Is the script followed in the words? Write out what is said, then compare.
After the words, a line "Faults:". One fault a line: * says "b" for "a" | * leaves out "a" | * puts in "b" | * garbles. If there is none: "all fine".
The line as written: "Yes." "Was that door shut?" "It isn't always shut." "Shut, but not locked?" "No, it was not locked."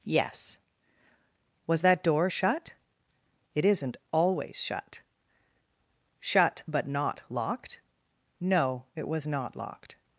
"Yes." "Was that door shut?" "It isn't always shut." "Shut, but not locked?" "No, it was not locked."
Faults:
all fine